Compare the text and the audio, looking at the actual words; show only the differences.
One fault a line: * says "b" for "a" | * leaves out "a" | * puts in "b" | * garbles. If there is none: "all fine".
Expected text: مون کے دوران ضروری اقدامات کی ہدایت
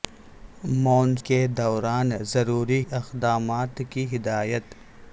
all fine